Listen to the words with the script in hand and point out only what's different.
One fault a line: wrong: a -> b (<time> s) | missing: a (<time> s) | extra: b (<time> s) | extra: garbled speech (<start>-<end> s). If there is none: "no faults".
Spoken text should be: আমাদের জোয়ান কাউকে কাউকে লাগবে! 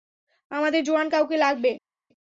missing: কাউকে (1.4 s)